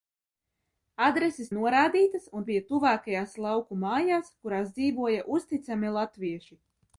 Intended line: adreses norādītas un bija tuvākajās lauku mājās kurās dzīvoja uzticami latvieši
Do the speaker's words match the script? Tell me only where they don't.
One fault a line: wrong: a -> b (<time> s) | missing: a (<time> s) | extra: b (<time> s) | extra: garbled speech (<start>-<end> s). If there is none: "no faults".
no faults